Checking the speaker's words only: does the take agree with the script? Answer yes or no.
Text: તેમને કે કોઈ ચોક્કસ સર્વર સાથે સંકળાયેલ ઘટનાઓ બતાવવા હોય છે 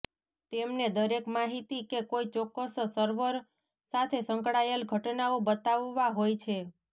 no